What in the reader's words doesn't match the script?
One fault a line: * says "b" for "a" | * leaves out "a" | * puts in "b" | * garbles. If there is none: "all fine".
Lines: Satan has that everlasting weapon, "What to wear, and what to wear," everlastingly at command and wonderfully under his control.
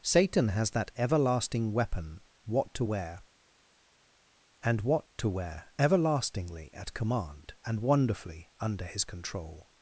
all fine